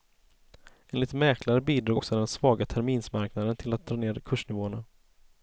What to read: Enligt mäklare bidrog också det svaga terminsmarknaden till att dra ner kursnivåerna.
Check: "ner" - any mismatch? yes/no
no